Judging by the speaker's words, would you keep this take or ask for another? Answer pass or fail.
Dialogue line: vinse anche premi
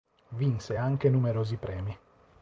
fail